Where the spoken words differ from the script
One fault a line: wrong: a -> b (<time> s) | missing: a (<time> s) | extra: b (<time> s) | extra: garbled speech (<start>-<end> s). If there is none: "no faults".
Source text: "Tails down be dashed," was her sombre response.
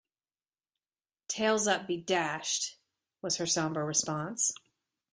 wrong: down -> up (1.7 s)